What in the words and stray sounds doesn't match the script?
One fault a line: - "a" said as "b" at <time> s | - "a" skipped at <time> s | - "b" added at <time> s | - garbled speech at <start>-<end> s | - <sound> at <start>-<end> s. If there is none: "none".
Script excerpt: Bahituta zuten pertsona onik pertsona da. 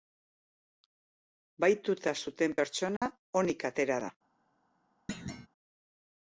- dropout at 3.0-3.0 s
- "pertsona" said as "atera" at 3.7 s
- thud at 5.1-5.5 s